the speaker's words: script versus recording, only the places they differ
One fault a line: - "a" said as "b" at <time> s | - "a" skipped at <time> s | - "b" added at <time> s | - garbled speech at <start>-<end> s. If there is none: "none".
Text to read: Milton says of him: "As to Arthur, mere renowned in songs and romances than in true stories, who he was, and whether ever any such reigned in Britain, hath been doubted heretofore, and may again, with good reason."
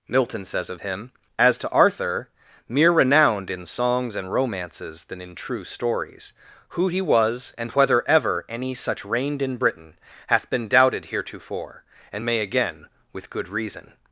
none